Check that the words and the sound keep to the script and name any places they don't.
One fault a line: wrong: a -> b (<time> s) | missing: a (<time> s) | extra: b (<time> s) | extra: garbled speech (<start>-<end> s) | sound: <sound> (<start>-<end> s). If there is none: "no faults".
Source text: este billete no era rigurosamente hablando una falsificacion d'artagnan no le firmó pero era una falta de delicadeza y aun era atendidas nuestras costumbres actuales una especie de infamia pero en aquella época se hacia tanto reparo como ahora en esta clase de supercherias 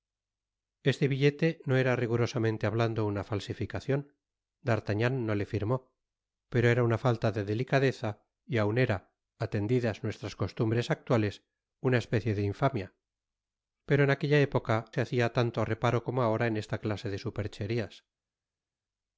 no faults